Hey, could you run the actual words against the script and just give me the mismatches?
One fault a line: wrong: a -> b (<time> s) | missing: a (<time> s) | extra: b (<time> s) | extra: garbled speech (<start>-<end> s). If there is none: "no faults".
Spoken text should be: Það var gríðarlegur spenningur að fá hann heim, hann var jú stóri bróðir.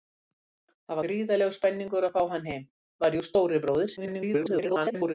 missing: var (1.0 s)
missing: hann (2.7 s)
extra: garbled speech (4.0-5.1 s)